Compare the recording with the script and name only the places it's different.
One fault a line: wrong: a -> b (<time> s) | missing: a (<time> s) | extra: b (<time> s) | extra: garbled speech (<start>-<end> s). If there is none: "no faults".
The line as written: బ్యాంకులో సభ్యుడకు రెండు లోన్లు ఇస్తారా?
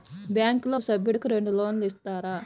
no faults